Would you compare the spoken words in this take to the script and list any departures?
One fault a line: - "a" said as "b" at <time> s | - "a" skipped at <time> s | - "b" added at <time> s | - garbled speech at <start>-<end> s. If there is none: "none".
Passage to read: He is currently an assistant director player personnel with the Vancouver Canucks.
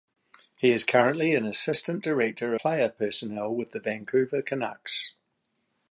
none